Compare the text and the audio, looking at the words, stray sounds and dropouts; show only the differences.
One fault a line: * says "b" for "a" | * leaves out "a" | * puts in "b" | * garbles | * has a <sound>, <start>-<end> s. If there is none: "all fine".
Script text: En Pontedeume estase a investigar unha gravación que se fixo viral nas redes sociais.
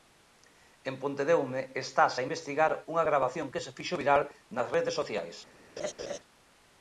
* has a laugh, 5.8-6.2 s